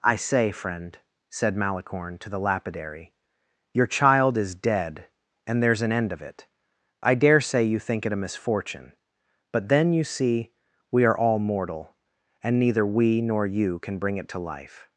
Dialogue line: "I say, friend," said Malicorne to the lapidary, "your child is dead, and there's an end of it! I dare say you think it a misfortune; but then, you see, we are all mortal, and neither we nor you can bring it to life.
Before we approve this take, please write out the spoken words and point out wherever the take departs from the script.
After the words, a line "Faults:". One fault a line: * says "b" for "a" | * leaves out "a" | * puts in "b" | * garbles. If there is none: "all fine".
"I say, friend," said Malicorne to the lapidary, "your child is dead, and there's an end of it! I dare say you think it a misfortune; but then, you see, we are all mortal, and neither we nor you can bring it to life.
Faults:
all fine